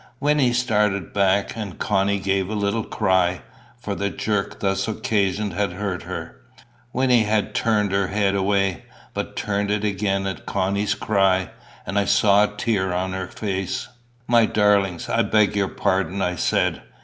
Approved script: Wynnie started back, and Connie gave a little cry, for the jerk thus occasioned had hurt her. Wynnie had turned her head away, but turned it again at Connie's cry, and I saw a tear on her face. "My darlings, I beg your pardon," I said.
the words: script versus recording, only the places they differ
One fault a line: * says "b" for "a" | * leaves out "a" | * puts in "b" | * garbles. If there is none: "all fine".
all fine